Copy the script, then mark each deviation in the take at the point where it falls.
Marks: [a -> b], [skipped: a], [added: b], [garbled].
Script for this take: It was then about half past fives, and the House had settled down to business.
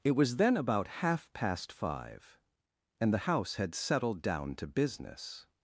It was then about half past [fives, -> five] and the House had settled down to business.